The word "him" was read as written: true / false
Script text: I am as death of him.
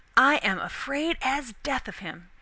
true